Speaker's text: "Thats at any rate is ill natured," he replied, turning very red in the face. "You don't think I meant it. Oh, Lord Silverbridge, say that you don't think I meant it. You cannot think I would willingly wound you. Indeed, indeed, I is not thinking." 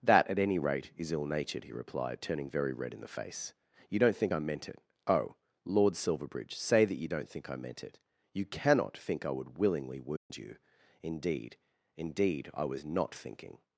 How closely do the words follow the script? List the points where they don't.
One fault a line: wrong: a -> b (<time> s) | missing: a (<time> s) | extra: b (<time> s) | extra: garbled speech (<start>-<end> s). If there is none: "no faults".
wrong: Thats -> That (0.0 s)
wrong: is -> was (12.6 s)